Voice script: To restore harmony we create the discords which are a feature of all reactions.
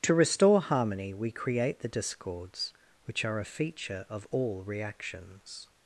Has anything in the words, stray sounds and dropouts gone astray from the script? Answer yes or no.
no